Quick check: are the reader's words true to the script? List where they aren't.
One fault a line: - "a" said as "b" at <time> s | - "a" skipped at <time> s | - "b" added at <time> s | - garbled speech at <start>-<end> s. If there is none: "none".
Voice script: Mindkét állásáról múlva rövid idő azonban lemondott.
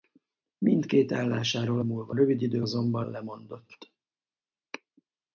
none